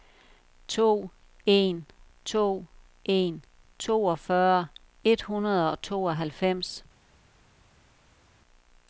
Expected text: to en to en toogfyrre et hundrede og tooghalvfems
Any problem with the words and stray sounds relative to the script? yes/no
no